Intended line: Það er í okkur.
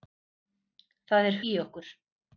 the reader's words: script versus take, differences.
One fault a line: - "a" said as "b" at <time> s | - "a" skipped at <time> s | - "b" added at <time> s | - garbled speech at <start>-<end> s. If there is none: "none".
none